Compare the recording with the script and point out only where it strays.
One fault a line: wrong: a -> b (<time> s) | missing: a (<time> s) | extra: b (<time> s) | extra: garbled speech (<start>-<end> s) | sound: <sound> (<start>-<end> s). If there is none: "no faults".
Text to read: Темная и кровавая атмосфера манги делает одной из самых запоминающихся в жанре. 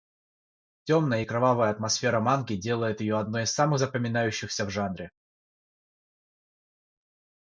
extra: ее (3.0 s)